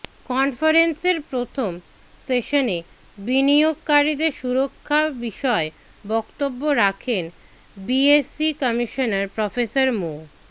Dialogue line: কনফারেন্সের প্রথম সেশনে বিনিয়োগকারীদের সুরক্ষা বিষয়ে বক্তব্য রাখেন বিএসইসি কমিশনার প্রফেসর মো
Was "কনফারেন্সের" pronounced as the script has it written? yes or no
yes